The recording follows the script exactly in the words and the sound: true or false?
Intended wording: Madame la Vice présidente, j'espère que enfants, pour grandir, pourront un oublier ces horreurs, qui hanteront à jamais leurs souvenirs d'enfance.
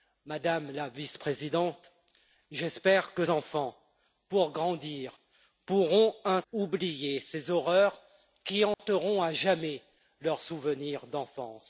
false